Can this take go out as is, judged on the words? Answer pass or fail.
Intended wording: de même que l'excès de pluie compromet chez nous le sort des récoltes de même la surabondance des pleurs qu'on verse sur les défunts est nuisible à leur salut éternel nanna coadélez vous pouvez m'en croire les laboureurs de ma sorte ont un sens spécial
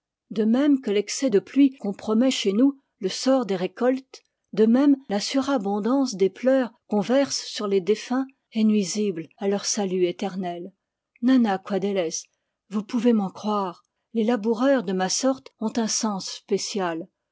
pass